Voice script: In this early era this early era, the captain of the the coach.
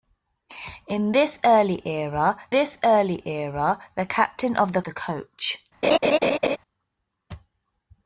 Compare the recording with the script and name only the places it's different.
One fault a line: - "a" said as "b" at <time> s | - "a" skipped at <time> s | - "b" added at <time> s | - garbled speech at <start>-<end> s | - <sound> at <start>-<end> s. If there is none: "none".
- laugh at 5.8-6.6 s